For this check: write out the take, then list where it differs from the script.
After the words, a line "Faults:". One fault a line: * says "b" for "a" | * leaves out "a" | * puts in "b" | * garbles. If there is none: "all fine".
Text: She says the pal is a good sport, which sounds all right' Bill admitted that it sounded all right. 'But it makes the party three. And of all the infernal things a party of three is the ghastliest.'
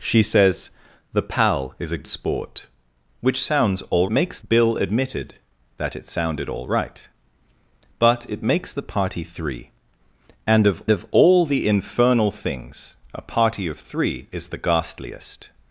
She says the pal is a sport, which sounds all makes' Bill admitted that it sounded all right. 'But it makes the party three. And of of all the infernal things a party of three is the ghastliest.'
Faults:
* leaves out "good"
* says "makes" for "right"
* puts in "of"